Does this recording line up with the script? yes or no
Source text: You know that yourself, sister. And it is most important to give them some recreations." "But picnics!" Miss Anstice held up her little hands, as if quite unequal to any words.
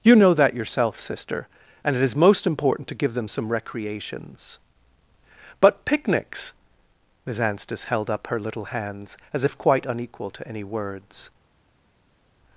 yes